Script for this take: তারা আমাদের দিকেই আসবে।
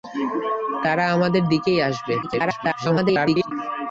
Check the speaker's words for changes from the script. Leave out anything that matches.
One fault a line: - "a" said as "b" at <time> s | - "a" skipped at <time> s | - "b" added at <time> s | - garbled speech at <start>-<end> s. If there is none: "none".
- garbled speech at 2.2-3.5 s